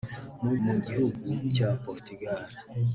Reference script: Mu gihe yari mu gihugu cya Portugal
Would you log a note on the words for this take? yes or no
yes